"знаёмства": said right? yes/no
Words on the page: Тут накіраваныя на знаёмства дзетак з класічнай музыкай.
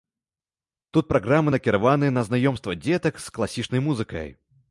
yes